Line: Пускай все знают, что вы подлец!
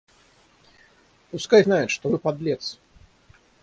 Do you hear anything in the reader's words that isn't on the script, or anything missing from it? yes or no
yes